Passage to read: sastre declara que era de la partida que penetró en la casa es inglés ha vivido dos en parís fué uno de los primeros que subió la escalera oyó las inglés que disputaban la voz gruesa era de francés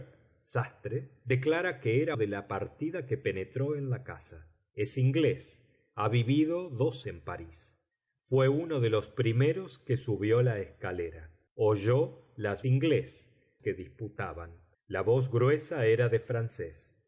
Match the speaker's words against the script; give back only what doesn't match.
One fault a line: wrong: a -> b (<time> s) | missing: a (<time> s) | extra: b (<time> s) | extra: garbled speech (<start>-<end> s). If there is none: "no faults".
no faults